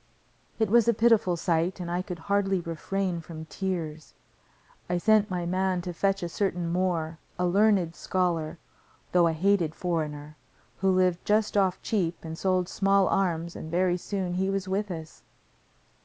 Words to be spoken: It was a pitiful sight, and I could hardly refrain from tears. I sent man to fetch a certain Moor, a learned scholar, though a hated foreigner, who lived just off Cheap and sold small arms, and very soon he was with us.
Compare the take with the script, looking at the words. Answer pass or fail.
fail